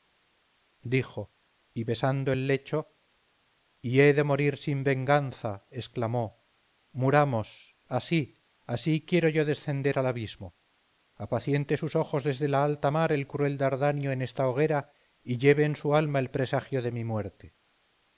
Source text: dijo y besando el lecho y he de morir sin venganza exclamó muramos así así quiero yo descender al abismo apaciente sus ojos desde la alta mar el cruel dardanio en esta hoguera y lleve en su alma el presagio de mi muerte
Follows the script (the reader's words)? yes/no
yes